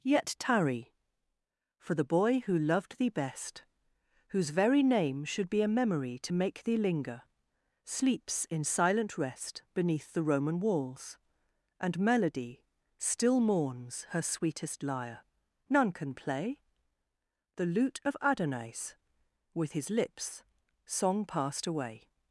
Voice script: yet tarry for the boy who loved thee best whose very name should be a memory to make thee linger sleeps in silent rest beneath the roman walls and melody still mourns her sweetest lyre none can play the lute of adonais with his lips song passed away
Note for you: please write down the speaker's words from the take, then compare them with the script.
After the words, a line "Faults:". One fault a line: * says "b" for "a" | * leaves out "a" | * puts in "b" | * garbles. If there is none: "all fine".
yet tarry for the boy who loved thee best whose very name should be a memory to make thee linger sleeps in silent rest beneath the roman walls and melody still mourns her sweetest lyre none can play the lute of adonais with his lips song passed away
Faults:
all fine